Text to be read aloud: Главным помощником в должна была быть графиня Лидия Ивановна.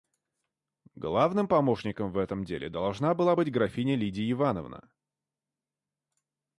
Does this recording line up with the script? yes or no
no